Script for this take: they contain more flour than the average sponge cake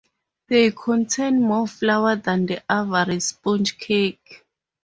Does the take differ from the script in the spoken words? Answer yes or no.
no